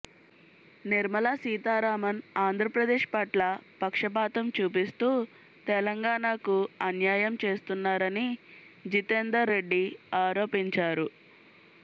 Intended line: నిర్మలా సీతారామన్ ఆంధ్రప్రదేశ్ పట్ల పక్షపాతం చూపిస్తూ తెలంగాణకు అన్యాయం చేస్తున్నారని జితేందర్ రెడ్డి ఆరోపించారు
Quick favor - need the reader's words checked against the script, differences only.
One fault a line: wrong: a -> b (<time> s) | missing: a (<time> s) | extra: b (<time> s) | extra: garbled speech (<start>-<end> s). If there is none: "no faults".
no faults